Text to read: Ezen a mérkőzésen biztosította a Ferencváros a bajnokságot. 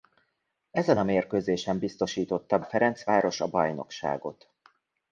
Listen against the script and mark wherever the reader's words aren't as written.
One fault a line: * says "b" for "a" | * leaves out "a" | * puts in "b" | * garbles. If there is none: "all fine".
all fine